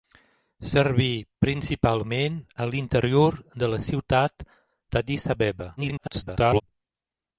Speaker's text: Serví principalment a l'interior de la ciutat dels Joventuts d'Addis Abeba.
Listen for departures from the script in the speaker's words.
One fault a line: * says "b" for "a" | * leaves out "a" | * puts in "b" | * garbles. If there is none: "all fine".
* leaves out "dels Joventuts"
* garbles